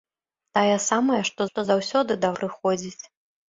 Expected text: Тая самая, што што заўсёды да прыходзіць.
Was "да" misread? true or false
false